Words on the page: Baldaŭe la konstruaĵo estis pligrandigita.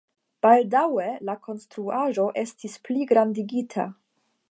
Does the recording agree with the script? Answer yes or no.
yes